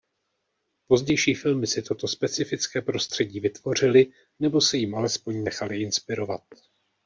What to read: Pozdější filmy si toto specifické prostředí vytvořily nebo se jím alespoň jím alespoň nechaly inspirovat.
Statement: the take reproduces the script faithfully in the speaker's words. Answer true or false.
false